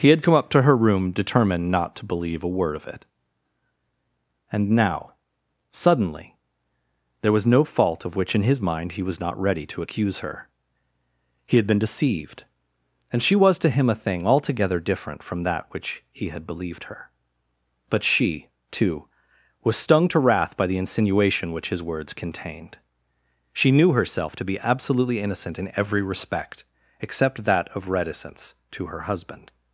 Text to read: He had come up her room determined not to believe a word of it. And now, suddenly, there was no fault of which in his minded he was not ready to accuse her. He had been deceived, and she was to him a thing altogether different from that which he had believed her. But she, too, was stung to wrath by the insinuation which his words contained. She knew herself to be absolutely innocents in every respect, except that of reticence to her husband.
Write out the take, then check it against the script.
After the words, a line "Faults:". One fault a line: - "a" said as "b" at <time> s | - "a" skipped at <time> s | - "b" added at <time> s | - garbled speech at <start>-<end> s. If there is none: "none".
He had come up to her room determined not to believe a word of it. And now, suddenly, there was no fault of which in his mind he was not ready to accuse her. He had been deceived, and she was to him a thing altogether different from that which he had believed her. But she, too, was stung to wrath by the insinuation which his words contained. She knew herself to be absolutely innocent in every respect, except that of reticence to her husband.
Faults:
- "to" added at 0.5 s
- "minded" said as "mind" at 8.6 s
- "innocents" said as "innocent" at 25.2 s